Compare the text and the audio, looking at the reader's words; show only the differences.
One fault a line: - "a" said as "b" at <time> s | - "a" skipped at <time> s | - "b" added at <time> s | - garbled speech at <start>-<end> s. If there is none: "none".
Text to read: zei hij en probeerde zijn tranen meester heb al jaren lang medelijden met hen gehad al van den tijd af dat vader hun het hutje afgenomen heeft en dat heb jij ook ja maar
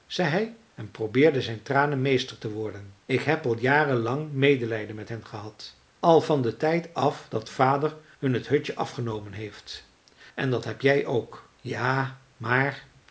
- "te worden ik" added at 2.4 s